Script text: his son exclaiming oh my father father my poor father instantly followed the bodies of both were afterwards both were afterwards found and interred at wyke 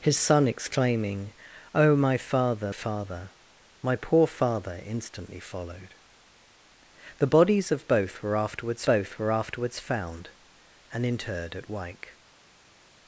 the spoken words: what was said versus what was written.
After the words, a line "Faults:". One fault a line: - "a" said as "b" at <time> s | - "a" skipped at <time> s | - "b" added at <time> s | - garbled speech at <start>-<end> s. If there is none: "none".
his son exclaiming oh my father father my poor father instantly followed the bodies of both were afterwards both were afterwards found and interred at wyke
Faults:
none